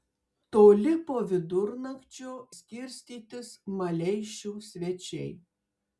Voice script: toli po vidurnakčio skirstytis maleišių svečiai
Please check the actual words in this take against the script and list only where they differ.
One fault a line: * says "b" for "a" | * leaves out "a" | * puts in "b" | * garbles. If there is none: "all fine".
all fine